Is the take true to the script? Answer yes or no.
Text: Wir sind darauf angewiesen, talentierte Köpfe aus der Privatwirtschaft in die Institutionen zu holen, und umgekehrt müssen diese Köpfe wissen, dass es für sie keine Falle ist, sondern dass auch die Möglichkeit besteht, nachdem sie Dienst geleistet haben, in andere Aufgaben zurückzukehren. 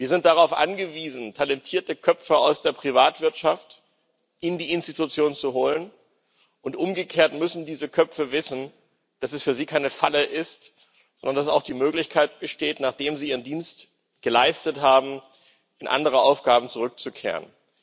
no